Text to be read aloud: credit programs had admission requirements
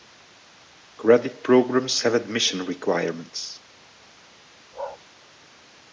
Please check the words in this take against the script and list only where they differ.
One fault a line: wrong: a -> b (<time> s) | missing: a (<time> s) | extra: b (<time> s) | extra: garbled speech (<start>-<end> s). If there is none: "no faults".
wrong: had -> have (2.0 s)